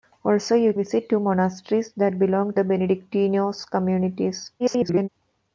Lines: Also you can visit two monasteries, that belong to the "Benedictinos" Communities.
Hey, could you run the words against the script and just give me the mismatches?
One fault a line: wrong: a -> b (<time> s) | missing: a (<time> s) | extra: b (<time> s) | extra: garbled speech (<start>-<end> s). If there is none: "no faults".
missing: can (0.7 s)
missing: to (2.5 s)
extra: garbled speech (4.6-5.1 s)